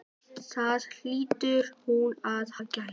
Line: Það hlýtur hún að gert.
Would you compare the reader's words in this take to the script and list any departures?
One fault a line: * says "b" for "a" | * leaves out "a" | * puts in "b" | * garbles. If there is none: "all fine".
all fine